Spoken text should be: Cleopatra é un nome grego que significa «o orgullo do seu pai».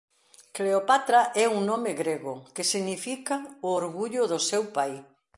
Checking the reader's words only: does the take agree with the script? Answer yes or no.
yes